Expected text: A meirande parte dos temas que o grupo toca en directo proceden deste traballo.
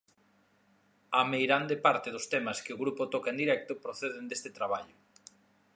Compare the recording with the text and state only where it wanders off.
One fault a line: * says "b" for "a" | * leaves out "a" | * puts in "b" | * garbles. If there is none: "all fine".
all fine